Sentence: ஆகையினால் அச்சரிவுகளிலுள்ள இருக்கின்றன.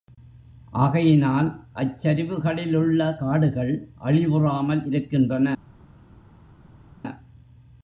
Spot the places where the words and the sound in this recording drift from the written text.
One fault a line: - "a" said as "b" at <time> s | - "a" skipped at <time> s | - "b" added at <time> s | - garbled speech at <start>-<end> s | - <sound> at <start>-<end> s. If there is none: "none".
- "காடுகள் அழிவுறாமல்" added at 3.2 s